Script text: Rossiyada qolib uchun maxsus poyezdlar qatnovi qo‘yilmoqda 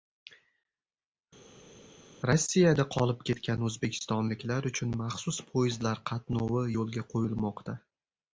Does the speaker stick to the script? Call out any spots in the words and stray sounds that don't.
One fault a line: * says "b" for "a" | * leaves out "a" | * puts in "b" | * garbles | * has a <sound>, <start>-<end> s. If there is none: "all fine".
* puts in "ketgan o‘zbekistonliklar"
* puts in "yo‘lga"